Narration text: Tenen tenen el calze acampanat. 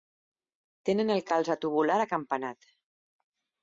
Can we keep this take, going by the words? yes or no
no